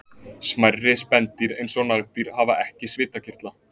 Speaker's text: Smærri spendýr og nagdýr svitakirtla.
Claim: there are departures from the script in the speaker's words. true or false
true